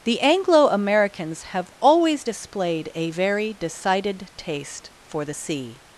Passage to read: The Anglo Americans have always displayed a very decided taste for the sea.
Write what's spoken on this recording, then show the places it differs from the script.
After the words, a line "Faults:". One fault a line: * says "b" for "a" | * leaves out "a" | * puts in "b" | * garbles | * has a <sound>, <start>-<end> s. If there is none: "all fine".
The Anglo Americans have always displayed a very decided taste for the sea.
Faults:
all fine